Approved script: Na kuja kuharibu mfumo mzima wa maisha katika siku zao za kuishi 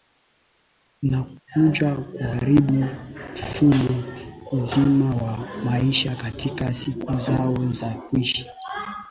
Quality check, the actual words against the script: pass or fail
pass